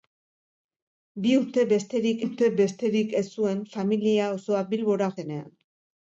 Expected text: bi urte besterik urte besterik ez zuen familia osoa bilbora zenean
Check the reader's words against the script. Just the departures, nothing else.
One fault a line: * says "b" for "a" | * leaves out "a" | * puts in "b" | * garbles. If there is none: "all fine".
all fine